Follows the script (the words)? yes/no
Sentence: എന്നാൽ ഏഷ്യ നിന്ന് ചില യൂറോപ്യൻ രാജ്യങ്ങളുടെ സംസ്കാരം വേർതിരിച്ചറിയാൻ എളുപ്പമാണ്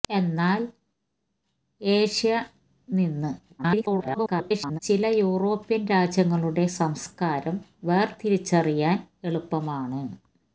no